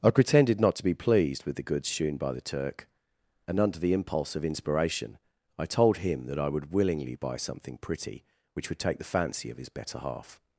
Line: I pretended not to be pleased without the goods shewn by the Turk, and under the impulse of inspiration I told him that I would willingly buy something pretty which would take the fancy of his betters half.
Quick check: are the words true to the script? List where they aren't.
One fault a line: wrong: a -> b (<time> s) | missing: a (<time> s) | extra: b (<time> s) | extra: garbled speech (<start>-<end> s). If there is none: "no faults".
wrong: without -> with (1.4 s)
wrong: betters -> better (9.7 s)